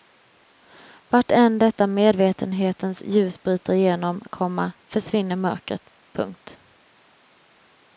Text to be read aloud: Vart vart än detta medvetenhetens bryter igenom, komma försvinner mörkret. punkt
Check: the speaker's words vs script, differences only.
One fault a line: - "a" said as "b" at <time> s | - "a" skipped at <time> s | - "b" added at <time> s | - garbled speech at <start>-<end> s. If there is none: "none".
- "vart" skipped at 1.3 s
- "ljus" added at 3.0 s